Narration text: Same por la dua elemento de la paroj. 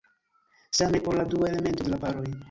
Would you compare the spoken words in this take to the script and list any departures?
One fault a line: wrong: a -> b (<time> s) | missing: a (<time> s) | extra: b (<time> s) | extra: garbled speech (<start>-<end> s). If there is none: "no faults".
no faults